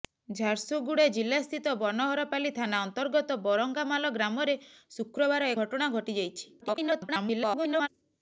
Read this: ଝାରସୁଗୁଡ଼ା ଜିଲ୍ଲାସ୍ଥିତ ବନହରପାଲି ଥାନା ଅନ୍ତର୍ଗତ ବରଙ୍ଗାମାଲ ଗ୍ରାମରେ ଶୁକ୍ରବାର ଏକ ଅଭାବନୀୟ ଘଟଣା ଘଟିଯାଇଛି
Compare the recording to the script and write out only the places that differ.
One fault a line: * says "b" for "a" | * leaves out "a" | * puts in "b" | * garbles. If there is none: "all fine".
* leaves out "ଏକ ଅଭାବନୀୟ"
* garbles